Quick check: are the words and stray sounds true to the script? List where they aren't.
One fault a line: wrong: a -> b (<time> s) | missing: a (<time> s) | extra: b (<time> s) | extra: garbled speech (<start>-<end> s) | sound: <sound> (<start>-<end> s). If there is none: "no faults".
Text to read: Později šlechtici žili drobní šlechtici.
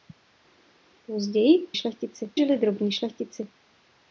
no faults